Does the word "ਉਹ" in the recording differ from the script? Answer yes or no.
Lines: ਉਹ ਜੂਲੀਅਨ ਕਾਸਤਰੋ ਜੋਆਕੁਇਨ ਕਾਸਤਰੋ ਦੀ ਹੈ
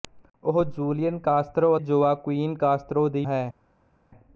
no